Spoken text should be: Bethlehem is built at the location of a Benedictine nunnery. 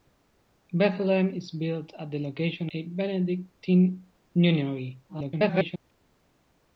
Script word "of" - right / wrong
wrong